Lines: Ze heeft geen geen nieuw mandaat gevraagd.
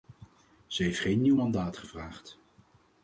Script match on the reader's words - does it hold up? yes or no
no